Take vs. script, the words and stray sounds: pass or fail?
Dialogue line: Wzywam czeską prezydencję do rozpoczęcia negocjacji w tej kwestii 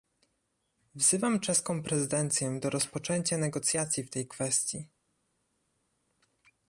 pass